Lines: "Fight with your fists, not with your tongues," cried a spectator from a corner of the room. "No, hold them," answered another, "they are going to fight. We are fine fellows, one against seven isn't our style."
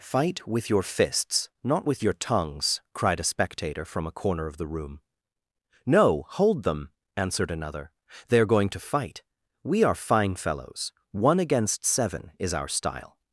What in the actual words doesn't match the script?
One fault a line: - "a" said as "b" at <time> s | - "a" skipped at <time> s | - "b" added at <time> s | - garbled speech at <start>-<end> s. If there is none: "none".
- "isn't" said as "is" at 12.4 s